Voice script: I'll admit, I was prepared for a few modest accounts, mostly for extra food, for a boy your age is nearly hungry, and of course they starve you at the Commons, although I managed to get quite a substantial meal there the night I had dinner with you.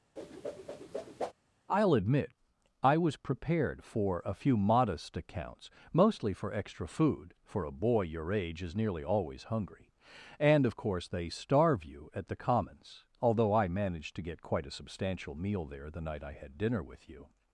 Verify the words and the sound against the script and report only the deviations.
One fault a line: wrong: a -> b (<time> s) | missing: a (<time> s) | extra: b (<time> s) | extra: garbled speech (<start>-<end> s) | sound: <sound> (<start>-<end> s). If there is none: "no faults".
sound: whoosh (0.2-1.3 s)
extra: always (9.0 s)